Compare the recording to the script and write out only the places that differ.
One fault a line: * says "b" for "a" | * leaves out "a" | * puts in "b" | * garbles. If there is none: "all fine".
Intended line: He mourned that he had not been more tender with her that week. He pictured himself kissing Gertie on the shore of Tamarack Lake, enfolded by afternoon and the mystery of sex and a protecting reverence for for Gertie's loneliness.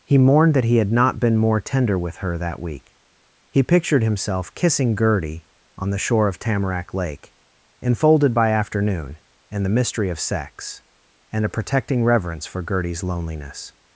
* leaves out "for"